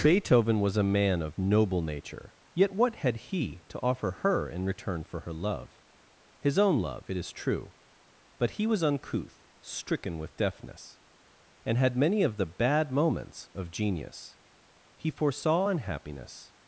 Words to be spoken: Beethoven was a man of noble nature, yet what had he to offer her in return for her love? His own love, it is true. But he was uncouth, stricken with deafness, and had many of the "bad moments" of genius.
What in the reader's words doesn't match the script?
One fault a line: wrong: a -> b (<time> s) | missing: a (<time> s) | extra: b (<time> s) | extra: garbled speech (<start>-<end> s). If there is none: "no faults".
extra: He foresaw unhappiness (15.0 s)